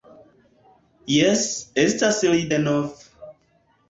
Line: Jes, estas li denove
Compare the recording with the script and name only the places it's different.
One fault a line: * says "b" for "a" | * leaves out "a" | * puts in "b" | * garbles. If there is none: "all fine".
all fine